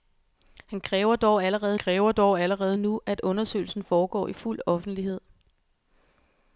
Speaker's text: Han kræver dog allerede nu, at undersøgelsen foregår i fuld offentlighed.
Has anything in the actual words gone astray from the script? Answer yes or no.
yes